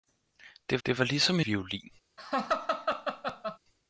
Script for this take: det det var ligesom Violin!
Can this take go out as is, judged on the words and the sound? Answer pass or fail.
fail